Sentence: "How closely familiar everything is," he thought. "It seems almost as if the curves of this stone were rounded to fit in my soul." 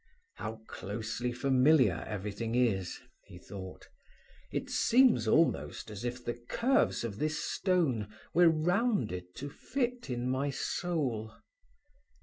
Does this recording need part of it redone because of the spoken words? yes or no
no